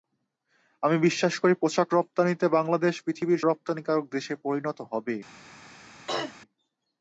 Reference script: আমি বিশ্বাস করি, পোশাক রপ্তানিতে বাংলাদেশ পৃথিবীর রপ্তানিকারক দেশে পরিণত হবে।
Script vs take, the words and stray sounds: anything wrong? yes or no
yes